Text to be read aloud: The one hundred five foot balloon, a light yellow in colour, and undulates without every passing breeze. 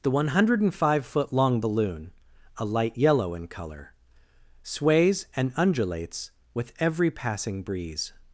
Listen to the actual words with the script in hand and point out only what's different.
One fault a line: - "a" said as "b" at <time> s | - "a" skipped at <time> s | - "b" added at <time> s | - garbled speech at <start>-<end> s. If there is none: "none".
- "long" added at 1.3 s
- "sways" added at 4.6 s
- "without" said as "with" at 6.5 s